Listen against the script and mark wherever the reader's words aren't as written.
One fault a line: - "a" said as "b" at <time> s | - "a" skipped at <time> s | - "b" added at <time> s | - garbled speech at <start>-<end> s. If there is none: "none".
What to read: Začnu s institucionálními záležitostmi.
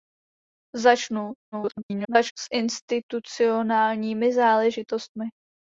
- garbled speech at 1.5-2.3 s